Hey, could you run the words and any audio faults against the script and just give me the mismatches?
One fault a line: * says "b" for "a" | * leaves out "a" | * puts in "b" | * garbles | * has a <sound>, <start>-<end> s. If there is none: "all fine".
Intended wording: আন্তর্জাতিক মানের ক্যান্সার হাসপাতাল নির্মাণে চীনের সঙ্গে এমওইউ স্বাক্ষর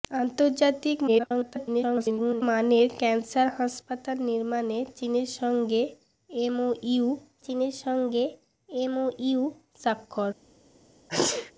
* garbles
* puts in "চীনের সঙ্গে এমওইউ"
* has a sneeze, 11.1-11.5 s